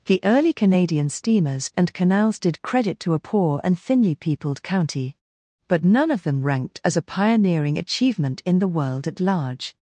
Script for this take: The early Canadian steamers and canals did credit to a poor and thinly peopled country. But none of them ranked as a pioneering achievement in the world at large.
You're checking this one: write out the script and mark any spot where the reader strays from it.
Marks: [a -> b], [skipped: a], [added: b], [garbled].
The early Canadian steamers and canals did credit to a poor and thinly peopled [country. -> county] But none of them ranked as a pioneering achievement in the world at large.